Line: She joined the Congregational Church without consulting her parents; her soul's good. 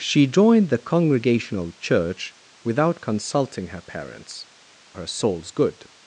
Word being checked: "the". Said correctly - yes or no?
yes